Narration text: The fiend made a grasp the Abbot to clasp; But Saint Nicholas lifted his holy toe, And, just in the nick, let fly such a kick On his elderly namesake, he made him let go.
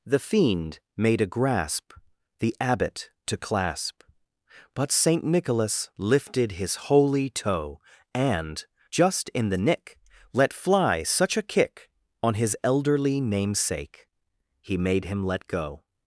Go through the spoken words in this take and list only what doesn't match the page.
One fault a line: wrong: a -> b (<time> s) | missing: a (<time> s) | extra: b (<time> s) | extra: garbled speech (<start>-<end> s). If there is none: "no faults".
no faults